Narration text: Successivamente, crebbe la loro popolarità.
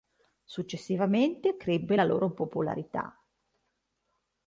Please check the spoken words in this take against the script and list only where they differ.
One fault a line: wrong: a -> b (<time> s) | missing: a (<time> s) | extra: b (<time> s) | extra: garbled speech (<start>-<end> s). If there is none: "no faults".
no faults